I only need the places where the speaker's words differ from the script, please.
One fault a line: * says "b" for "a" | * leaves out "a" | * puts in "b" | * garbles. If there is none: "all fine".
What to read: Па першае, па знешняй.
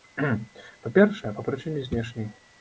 * puts in "прычыне"